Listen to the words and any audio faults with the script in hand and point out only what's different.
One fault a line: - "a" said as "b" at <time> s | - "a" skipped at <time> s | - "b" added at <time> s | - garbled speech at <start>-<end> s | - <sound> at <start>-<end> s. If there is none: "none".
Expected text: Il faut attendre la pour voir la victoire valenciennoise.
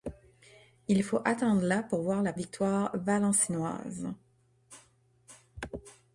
none